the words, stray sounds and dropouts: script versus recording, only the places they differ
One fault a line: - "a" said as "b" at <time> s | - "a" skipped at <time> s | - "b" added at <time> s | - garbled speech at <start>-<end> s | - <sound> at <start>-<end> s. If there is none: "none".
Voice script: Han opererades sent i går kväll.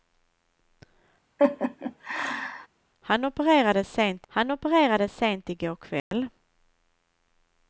- laugh at 1.4-2.7 s
- "han opererades sent" added at 4.3 s
- dropout at 6.0-6.1 s